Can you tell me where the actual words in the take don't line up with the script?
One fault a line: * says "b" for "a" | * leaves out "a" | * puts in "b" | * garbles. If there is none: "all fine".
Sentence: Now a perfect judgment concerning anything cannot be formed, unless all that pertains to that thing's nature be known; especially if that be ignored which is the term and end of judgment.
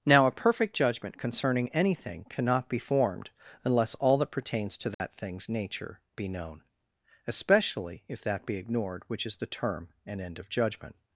all fine